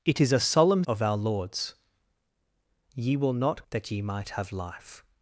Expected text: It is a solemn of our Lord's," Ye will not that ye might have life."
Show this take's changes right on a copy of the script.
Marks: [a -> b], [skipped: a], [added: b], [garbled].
It is a solemn of our Lord's," Ye will not that ye might have life."